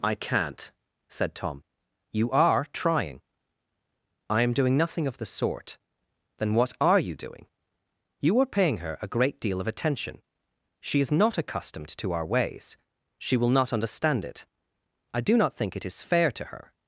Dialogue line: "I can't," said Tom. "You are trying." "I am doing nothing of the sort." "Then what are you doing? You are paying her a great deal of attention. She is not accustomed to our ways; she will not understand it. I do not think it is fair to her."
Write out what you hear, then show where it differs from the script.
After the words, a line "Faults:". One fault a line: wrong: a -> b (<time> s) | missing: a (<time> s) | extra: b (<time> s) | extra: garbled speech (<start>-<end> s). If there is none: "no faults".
"I can't," said Tom. "You are trying." "I am doing nothing of the sort." "Then what are you doing? You are paying her a great deal of attention. She is not accustomed to our ways; she will not understand it. I do not think it is fair to her."
Faults:
no faults